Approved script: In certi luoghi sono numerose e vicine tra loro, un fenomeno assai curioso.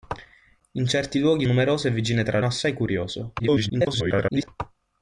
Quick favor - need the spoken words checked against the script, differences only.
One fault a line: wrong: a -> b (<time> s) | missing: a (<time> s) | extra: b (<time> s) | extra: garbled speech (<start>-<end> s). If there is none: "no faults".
missing: sono (1.4 s)
missing: loro un fenomeno (2.4 s)
extra: garbled speech (3.4-4.5 s)